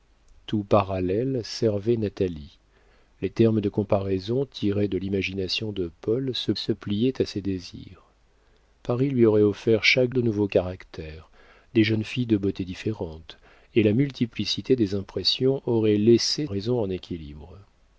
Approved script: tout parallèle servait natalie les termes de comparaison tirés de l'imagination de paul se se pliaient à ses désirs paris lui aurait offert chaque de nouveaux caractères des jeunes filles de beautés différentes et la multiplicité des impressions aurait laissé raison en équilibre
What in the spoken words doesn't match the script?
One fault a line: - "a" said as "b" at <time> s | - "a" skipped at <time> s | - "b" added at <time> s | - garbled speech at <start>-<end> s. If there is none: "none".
none